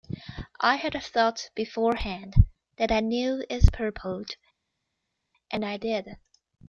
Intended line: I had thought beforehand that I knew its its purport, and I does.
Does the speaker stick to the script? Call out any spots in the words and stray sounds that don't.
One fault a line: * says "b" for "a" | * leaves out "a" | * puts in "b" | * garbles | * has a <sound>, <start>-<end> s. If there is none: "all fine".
* leaves out "its"
* says "did" for "does"